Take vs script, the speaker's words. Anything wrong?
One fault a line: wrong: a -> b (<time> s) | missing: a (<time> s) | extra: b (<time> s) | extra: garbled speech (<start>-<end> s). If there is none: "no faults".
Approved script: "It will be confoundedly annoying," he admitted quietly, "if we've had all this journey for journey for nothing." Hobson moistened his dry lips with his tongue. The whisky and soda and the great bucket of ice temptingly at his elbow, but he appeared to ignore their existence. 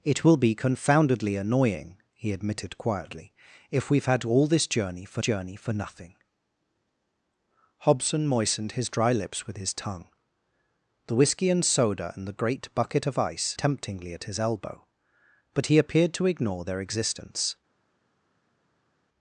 no faults